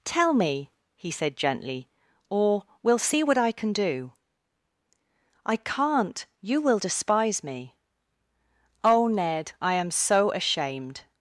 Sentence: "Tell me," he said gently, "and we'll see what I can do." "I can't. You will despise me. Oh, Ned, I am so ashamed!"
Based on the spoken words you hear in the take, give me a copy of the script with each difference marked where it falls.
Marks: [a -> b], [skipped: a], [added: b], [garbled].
"Tell me," he said gently, ["and -> or] we'll see what I can do." "I can't. You will despise me. Oh, Ned, I am so ashamed!"